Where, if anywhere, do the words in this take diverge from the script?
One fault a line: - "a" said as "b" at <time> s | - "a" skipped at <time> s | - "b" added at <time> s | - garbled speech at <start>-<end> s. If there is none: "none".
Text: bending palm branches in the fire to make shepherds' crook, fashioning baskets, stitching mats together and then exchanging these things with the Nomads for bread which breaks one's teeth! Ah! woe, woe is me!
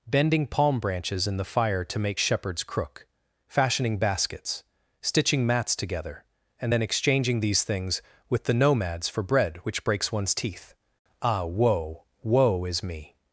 none